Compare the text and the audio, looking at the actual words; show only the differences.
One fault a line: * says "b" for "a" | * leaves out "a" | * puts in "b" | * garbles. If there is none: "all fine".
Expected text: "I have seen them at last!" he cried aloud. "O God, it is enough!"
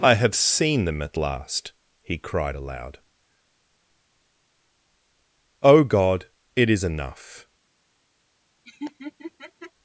all fine